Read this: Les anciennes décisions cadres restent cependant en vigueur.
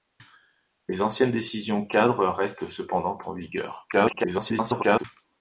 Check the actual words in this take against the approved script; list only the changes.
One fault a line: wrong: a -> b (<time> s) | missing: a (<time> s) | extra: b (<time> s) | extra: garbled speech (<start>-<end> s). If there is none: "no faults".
extra: garbled speech (3.9-5.0 s)